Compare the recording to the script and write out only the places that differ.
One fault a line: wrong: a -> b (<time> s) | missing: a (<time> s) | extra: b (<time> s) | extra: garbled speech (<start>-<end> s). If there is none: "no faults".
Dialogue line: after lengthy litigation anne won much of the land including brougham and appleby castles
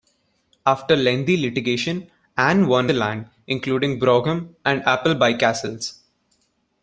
missing: much of (2.9 s)